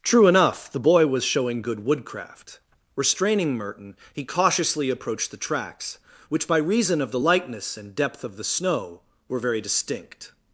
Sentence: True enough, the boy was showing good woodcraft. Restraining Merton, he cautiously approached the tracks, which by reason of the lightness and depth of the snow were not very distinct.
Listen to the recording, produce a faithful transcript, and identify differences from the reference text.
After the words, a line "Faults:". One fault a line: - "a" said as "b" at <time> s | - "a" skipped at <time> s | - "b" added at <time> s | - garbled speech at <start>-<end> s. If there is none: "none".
True enough, the boy was showing good woodcraft. Restraining Merton, he cautiously approached the tracks, which by reason of the lightness and depth of the snow were very distinct.
Faults:
- "not" skipped at 9.4 s